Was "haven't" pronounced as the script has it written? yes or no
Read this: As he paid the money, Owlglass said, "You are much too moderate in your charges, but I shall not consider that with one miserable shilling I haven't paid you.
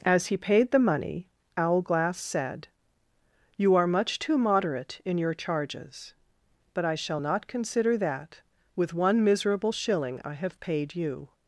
no